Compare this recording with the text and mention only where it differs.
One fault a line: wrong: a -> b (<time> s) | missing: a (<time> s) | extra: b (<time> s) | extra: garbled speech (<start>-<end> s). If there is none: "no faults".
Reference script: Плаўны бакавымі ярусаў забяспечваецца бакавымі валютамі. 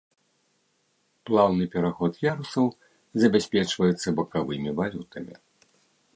wrong: бакавымі -> пераход (1.8 s)